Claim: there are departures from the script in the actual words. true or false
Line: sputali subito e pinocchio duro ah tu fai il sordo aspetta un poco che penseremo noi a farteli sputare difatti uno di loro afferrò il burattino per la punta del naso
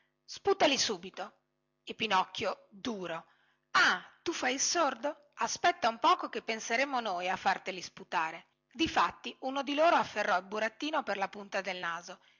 false